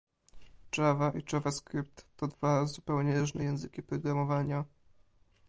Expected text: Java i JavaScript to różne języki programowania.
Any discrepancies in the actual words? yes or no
yes